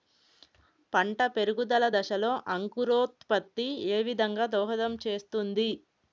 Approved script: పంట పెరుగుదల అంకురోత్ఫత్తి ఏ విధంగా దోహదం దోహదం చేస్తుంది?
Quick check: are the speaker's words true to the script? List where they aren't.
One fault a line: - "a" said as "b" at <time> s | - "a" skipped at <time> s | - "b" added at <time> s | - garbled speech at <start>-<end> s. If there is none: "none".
- "దశలో" added at 2.0 s
- "దోహదం" skipped at 5.0 s